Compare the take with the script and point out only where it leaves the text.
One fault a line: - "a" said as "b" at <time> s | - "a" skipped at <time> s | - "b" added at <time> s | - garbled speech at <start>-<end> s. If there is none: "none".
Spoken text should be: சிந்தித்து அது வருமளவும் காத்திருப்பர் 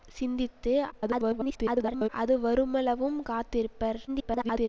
- garbled speech at 0.9-2.1 s
- garbled speech at 4.1-4.7 s